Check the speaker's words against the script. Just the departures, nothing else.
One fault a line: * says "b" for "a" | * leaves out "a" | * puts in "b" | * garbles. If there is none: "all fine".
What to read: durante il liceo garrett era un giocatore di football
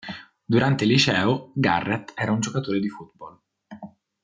all fine